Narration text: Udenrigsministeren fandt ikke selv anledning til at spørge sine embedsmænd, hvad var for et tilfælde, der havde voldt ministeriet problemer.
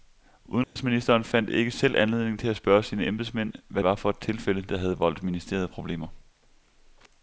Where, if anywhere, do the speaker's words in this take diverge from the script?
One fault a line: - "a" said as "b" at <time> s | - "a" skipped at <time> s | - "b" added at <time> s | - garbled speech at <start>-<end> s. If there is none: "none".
none